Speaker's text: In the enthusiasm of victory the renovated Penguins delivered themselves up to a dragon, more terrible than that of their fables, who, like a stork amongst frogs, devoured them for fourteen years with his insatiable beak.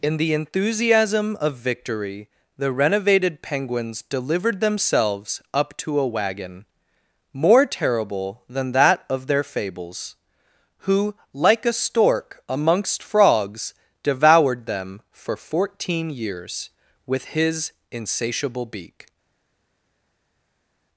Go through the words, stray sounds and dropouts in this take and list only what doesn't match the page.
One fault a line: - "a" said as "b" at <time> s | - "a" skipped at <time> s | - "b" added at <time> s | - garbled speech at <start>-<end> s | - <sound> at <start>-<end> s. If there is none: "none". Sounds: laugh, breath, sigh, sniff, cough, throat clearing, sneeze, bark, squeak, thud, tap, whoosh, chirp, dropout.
- "dragon" said as "wagon" at 6.1 s